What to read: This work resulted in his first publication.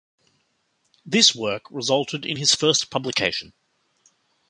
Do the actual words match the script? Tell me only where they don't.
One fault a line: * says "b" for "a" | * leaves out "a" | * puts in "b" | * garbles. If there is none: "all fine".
all fine